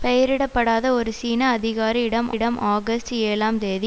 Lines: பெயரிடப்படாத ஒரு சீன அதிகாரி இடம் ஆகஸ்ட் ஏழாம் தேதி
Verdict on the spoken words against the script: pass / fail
fail